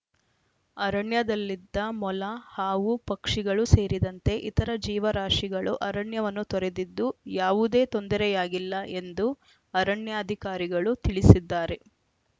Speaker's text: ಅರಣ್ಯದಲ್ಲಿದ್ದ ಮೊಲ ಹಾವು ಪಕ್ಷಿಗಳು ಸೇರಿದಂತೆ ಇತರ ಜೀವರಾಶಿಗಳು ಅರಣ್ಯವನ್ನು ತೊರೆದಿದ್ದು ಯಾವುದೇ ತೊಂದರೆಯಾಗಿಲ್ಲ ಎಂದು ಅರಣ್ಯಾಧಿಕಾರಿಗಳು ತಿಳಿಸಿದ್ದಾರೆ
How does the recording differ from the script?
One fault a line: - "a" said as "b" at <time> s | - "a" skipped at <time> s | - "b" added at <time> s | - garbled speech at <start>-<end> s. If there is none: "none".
none